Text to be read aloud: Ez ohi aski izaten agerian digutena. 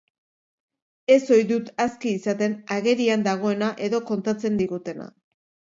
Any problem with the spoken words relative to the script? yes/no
yes